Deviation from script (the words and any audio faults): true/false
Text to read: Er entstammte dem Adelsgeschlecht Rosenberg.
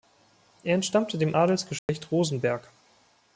true